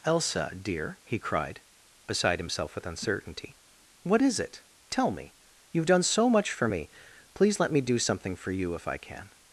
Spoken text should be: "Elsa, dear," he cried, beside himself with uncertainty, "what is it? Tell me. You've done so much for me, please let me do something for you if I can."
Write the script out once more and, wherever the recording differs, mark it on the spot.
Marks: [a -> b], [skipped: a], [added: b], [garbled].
"Elsa, dear," he cried, beside himself with uncertainty, "what is it? Tell me. You've done so much for me, please let me do something for you if I can."